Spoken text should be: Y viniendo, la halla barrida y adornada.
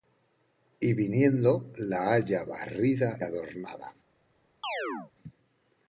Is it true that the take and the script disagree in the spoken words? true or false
true